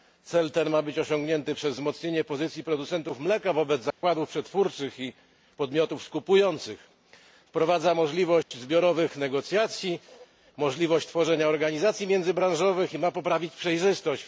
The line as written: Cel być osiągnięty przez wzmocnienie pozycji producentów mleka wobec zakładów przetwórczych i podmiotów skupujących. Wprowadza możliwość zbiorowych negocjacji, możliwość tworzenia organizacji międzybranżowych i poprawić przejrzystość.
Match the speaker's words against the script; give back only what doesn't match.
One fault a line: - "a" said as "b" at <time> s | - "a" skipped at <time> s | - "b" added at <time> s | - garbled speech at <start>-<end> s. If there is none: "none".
- "ten ma" added at 0.5 s
- "ma" added at 13.0 s